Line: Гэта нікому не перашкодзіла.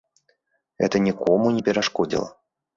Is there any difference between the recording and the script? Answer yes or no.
no